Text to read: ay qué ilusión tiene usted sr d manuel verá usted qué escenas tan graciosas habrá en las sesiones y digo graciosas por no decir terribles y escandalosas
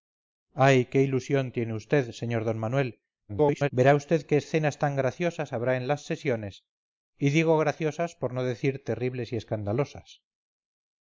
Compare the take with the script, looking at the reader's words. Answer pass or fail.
fail